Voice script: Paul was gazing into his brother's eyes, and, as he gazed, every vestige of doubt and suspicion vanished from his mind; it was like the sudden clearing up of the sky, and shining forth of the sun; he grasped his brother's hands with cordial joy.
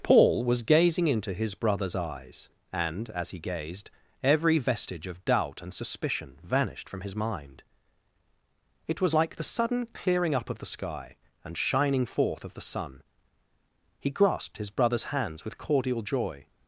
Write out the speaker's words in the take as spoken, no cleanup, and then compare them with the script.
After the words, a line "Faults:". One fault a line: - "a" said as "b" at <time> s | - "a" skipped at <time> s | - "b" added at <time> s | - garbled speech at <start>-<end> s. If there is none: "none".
Paul was gazing into his brother's eyes, and, as he gazed, every vestige of doubt and suspicion vanished from his mind; it was like the sudden clearing up of the sky, and shining forth of the sun; he grasped his brother's hands with cordial joy.
Faults:
none